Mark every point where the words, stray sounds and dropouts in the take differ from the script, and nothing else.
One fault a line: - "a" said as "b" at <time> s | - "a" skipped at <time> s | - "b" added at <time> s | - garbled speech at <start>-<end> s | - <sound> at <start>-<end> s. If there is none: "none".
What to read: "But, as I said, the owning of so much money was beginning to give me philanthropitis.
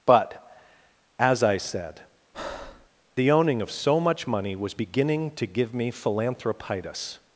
- breath at 2.3-2.9 s